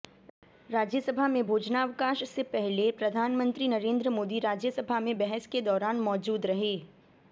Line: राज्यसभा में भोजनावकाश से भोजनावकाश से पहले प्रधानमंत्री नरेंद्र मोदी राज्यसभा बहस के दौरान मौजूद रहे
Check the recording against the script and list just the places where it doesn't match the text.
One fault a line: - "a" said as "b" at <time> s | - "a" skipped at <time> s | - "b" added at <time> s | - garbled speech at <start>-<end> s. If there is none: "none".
- "भोजनावकाश से" skipped at 2.4 s
- "में" added at 5.0 s